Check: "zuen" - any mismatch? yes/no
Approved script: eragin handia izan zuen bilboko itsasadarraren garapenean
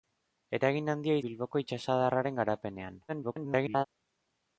yes